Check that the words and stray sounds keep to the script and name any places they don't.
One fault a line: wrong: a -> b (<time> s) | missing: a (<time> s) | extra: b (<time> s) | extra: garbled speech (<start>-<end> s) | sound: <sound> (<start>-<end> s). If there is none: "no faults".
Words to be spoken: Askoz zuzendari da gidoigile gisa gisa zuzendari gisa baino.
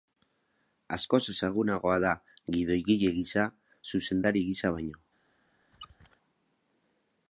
wrong: zuzendari -> ezagunagoa (1.3 s)
missing: gisa (3.5 s)
sound: squeak (5.7-6.2 s)